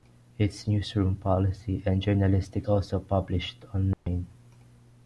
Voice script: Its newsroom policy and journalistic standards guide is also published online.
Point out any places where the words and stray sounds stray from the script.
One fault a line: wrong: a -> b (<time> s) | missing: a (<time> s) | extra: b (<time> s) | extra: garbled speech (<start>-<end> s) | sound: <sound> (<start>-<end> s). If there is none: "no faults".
missing: standards guide is (2.7 s)
sound: dropout (3.9-4.1 s)